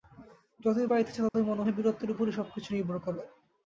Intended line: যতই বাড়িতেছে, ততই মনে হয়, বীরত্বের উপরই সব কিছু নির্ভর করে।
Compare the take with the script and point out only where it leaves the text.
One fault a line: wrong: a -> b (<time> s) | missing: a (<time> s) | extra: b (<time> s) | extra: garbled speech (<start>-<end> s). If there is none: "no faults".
no faults